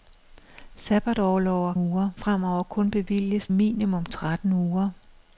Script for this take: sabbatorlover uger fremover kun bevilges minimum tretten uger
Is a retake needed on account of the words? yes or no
no